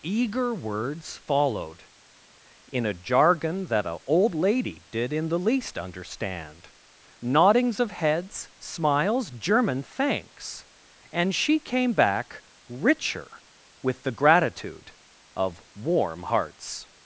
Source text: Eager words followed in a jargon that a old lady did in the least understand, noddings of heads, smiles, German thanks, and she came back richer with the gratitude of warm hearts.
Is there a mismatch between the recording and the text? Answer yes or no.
no